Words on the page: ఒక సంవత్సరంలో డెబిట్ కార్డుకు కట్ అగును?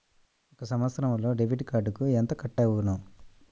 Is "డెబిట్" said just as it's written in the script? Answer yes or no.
yes